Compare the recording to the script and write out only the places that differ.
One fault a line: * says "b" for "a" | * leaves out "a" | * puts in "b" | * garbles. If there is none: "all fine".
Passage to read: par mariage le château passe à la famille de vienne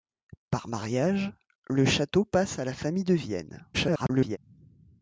* garbles